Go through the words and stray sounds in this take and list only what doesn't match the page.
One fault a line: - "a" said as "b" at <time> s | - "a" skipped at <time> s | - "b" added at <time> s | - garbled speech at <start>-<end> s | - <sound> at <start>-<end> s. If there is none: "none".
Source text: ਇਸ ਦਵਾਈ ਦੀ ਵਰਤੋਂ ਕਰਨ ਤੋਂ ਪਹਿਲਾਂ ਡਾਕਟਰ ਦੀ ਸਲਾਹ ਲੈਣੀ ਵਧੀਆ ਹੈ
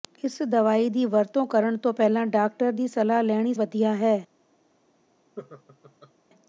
- laugh at 5.4-6.1 s